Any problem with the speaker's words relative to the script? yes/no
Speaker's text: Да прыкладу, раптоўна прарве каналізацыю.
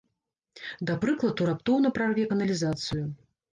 no